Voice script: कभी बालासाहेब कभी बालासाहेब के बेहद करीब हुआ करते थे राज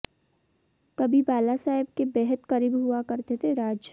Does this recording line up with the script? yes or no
no